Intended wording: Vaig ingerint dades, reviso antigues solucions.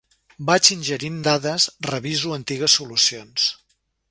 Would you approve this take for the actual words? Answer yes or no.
yes